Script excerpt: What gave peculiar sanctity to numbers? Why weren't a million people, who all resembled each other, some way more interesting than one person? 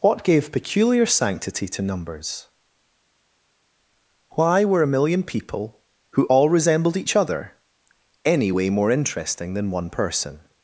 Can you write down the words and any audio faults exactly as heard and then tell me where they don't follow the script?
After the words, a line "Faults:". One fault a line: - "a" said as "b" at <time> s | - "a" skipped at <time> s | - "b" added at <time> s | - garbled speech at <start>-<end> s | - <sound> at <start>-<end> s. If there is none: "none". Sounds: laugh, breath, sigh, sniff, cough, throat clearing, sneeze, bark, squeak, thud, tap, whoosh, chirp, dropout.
What gave peculiar sanctity to numbers? Why were a million people, who all resembled each other, any way more interesting than one person?
Faults:
- "weren't" said as "were" at 4.6 s
- "some" said as "any" at 8.2 s